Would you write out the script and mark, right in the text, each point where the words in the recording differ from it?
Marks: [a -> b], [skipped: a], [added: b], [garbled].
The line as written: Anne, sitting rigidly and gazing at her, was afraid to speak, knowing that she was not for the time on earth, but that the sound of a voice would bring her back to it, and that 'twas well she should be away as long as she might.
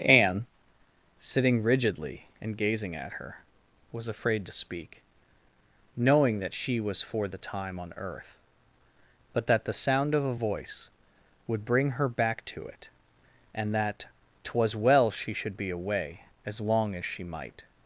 Anne, sitting rigidly and gazing at her, was afraid to speak, knowing that she was [skipped: not] for the time on earth, but that the sound of a voice would bring her back to it, and that 'twas well she should be away as long as she might.